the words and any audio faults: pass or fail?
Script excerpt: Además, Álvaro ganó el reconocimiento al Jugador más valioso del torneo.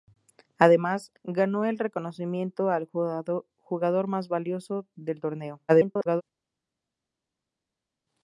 fail